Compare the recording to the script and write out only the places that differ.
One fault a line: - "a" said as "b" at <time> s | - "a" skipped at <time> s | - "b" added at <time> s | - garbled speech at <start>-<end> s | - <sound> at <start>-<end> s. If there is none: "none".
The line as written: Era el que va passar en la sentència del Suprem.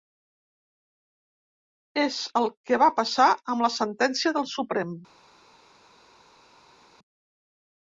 - "Era" said as "És" at 2.0 s
- "en" said as "amb" at 3.5 s